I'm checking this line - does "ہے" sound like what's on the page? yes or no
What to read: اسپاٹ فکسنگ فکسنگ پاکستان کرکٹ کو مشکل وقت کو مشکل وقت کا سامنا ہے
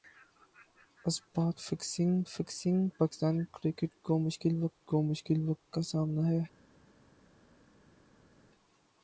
yes